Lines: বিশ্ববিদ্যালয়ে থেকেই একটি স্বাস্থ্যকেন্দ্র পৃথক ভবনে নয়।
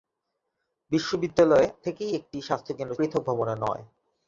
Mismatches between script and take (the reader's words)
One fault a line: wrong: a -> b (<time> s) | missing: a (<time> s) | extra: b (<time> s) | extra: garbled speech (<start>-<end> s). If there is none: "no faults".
no faults